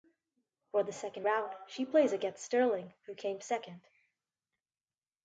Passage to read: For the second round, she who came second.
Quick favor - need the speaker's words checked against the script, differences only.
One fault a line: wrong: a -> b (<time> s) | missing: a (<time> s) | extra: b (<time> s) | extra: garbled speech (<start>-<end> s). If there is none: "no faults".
extra: plays against Sterling (1.8 s)